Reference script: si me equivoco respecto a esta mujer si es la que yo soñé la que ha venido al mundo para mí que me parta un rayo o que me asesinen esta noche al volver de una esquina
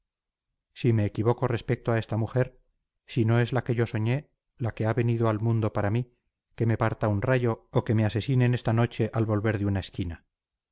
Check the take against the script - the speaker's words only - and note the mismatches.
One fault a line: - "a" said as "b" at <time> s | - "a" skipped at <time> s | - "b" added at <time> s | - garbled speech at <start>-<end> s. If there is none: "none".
- "no" added at 3.2 s